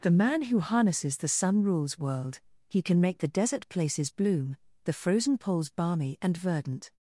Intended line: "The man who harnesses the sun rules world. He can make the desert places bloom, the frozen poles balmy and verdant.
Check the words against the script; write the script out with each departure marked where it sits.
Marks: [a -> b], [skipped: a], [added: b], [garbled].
"The man who harnesses the sun rules world. He can make the desert places bloom, the frozen poles balmy and verdant.